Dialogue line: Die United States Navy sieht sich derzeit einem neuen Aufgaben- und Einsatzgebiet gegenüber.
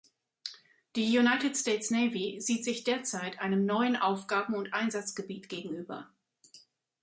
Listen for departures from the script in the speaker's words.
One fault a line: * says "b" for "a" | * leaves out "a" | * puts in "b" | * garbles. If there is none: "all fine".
all fine